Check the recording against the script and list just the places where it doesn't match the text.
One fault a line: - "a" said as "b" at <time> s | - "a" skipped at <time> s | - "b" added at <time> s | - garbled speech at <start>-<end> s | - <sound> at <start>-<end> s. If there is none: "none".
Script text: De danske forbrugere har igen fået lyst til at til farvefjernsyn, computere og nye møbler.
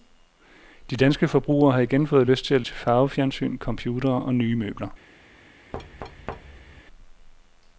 - thud at 5.7-6.8 s